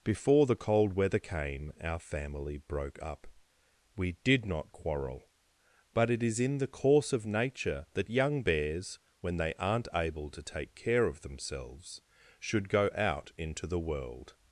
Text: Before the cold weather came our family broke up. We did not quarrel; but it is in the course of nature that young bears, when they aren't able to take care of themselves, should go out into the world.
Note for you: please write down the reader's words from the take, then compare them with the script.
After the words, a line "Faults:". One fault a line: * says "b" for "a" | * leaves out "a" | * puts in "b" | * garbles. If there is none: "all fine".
Before the cold weather came our family broke up. We did not quarrel; but it is in the course of nature that young bears, when they aren't able to take care of themselves, should go out into the world.
Faults:
all fine